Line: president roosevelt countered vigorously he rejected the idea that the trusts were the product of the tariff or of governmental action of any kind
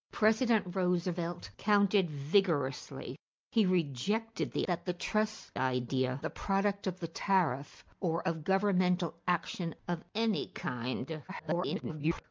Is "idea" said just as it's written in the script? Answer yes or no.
no